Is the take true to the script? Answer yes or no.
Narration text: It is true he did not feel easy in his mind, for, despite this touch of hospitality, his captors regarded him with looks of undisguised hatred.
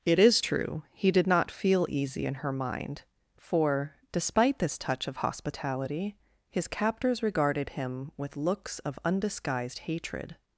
no